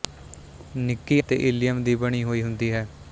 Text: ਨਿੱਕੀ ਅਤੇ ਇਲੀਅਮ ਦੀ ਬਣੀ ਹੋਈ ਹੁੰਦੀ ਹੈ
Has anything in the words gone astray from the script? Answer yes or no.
no